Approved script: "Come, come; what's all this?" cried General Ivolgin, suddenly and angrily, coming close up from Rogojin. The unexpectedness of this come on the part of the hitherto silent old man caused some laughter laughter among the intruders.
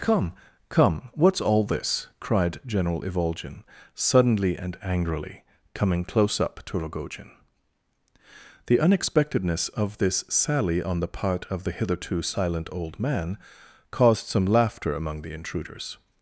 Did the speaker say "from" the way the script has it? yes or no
no